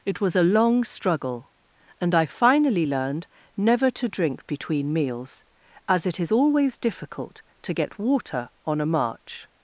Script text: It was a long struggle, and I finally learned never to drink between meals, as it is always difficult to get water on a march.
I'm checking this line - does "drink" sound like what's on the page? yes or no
yes